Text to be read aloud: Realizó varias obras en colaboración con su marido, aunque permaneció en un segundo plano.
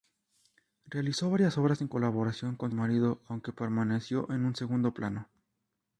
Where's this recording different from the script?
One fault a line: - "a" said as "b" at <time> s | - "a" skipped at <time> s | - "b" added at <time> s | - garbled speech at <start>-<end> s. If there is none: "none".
none